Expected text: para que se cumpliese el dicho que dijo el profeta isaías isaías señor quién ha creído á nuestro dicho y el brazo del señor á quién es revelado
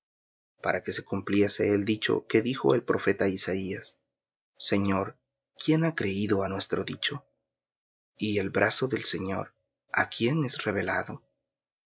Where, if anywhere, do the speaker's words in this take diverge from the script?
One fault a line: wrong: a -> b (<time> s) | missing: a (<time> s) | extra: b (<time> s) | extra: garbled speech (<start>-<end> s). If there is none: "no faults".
missing: isaías (4.0 s)